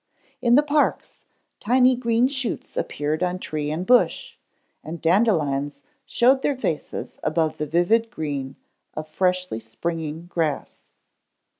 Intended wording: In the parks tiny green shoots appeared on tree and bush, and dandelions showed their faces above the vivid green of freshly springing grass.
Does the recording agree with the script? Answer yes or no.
yes